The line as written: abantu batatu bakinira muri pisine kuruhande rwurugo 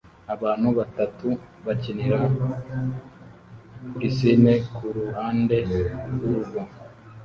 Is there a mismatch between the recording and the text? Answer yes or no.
yes